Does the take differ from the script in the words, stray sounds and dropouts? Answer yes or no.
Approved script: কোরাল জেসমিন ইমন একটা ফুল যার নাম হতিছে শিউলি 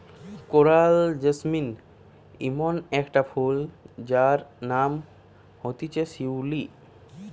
no